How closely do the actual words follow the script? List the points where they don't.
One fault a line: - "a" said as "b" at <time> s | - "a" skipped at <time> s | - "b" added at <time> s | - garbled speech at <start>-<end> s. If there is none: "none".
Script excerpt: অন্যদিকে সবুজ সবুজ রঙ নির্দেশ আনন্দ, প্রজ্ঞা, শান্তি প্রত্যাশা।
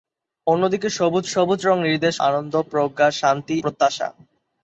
none